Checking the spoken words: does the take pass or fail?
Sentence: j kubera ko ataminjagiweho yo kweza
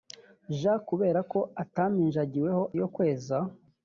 pass